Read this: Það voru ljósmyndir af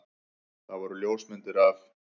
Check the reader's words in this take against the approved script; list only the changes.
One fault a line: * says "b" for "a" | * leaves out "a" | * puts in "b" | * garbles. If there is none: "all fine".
all fine